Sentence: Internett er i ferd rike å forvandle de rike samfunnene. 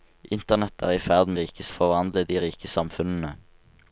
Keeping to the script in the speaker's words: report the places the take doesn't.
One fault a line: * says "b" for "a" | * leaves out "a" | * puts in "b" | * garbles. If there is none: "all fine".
all fine